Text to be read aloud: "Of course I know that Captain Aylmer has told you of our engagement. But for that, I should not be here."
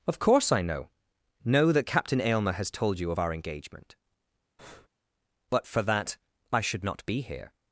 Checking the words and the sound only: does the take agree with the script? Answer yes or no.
no